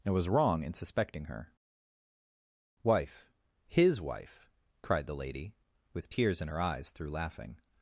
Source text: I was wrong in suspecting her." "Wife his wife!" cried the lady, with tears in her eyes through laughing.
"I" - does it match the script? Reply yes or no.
no